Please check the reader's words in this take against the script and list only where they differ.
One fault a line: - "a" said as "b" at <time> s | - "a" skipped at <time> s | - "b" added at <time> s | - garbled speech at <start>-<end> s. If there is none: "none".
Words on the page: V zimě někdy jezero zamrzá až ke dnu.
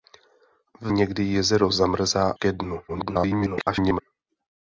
- "zimě" skipped at 0.9 s
- "až" skipped at 2.3 s
- garbled speech at 2.9-4.0 s